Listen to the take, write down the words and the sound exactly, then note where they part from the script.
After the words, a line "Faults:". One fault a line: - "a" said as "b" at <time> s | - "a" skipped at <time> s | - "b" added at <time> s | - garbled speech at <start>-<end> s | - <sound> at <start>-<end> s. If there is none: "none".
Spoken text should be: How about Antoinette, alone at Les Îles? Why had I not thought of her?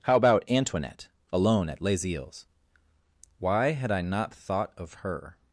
How about Antoinette, alone at Les Îles? Why had I not thought of her?
Faults:
none